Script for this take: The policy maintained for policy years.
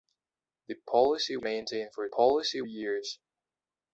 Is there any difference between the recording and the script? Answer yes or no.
no